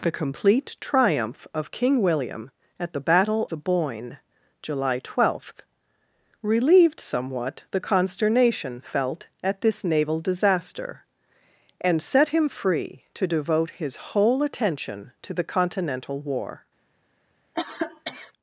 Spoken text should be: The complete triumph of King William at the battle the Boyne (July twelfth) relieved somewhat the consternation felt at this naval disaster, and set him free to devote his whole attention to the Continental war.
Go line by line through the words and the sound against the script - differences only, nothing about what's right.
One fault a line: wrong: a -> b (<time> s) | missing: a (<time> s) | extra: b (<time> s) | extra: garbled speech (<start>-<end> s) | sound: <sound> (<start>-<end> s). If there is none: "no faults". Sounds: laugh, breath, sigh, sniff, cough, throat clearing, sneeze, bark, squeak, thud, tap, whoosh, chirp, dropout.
sound: cough (17.5-18.3 s)